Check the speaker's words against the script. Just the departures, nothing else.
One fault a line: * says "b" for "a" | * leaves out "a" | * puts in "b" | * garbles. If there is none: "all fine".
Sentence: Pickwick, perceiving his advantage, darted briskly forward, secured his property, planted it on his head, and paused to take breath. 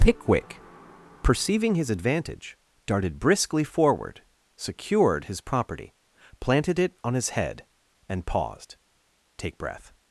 * leaves out "to"